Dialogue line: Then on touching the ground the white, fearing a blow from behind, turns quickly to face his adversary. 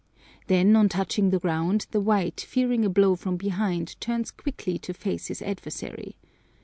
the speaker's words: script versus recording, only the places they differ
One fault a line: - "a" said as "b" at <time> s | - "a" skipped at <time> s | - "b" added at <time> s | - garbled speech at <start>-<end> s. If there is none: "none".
none